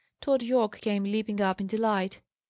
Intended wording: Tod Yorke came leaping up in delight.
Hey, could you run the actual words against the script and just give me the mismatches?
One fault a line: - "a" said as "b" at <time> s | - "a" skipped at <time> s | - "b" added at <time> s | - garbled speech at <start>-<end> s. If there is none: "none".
none